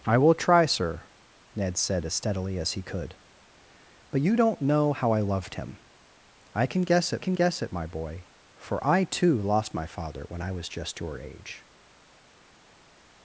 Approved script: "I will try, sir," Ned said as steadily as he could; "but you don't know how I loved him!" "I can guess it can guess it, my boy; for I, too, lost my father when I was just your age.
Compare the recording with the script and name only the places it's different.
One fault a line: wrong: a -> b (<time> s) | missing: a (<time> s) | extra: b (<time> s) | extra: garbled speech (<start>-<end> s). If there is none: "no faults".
no faults